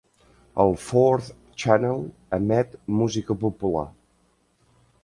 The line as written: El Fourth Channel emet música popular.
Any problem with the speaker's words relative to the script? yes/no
no